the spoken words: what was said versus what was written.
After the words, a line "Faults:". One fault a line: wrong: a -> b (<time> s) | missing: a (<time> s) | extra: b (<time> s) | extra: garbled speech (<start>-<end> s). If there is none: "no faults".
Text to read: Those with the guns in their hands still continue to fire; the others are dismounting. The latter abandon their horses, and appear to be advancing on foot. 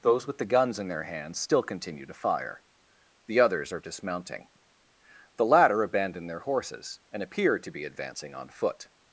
Those with the guns in their hands still continue to fire; the others are dismounting. The latter abandon their horses, and appear to be advancing on foot.
Faults:
no faults